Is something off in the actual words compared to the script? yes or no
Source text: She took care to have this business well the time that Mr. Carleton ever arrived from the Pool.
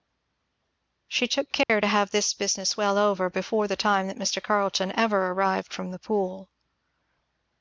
yes